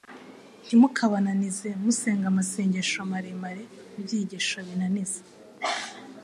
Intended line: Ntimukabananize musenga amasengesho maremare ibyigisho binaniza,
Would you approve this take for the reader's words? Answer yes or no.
yes